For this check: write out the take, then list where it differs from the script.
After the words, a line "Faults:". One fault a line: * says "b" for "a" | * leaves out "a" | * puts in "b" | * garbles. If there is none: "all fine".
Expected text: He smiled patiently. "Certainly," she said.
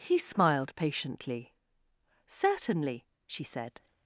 He smiled patiently. "Certainly," she said.
Faults:
all fine